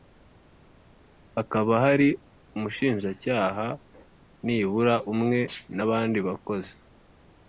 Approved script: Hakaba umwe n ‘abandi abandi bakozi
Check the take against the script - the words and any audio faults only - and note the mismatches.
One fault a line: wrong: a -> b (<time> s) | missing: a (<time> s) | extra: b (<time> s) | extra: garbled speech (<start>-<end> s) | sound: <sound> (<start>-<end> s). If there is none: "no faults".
extra: hari umushinjacyaha nibura (1.8 s)
missing: abandi (6.2 s)